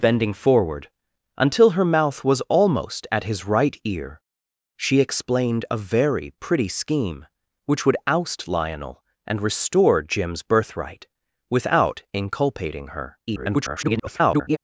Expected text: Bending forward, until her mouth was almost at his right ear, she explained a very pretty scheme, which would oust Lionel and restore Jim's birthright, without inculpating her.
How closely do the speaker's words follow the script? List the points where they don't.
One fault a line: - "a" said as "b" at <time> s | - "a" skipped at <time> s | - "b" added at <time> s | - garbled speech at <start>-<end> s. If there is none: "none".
- garbled speech at 13.3-14.6 s